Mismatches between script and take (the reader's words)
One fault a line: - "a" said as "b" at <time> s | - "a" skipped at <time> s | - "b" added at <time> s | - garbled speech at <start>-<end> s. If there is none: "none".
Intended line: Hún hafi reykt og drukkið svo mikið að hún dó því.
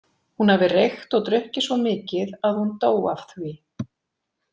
- "af" added at 3.1 s